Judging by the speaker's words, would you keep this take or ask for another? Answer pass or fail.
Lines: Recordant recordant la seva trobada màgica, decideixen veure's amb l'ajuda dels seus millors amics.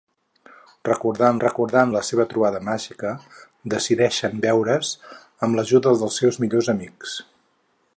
pass